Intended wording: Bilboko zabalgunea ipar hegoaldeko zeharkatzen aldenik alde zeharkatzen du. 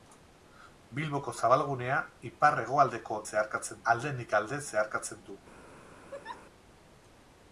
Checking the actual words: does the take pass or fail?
pass